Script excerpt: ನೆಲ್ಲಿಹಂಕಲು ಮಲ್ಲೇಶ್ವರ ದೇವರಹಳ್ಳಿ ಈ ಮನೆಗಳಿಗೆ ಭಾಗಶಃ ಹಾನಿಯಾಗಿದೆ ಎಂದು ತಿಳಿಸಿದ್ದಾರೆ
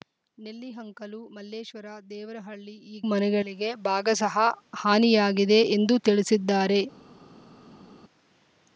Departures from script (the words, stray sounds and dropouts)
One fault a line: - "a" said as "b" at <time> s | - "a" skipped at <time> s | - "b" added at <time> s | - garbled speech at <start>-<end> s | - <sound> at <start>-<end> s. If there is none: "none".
none